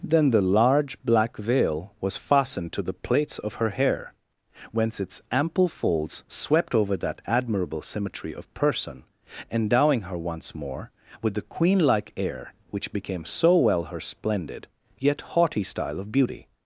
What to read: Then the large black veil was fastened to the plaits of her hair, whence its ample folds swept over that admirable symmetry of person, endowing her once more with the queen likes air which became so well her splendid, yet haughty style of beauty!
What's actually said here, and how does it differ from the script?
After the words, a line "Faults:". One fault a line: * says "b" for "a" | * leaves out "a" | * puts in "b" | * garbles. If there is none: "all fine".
Then the large black veil was fastened to the plaits of her hair, whence its ample folds swept over that admirable symmetry of person, endowing her once more with the queen like air which became so well her splendid, yet haughty style of beauty!
Faults:
* says "like" for "likes"